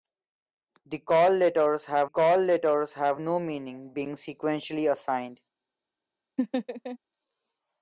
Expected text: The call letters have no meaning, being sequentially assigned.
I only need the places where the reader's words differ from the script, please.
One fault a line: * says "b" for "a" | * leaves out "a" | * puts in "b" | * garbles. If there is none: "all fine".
* puts in "call letters have"